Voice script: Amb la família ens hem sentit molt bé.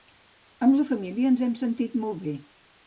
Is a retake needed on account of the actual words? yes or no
no